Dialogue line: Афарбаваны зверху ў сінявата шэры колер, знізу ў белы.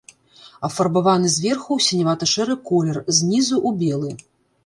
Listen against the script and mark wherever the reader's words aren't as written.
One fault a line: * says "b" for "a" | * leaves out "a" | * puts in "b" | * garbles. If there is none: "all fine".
all fine